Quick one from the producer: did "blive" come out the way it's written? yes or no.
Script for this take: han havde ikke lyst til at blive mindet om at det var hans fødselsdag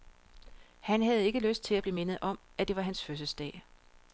yes